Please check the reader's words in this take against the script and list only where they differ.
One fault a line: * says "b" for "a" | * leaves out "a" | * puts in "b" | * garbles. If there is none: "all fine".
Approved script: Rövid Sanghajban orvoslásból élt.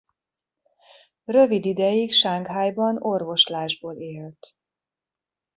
* puts in "ideig"